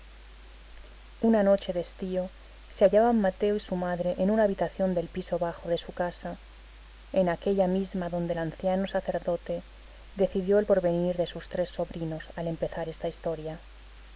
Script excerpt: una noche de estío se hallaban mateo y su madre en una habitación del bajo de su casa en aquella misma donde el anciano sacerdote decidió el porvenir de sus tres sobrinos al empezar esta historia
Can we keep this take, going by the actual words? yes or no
no